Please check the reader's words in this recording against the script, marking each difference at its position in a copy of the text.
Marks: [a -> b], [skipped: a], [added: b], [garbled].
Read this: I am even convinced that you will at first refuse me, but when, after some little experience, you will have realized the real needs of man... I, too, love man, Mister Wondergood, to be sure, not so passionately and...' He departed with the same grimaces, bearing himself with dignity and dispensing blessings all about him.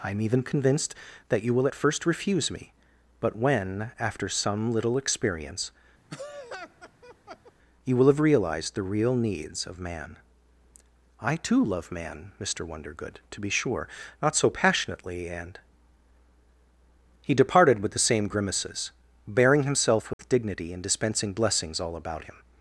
I am even convinced that you will at first refuse me, but when, after some little experience, you will have realized the real needs of man... I, too, love man, Mister Wondergood, to be sure, not so passionately and...' He departed with the same grimaces, bearing himself with dignity and dispensing blessings all about him.